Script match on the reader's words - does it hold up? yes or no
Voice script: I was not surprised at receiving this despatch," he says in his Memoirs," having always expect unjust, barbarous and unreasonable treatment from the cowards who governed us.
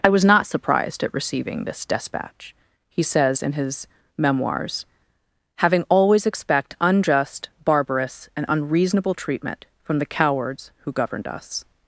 yes